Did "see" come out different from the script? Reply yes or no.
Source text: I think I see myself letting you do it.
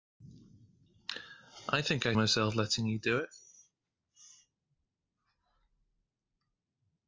yes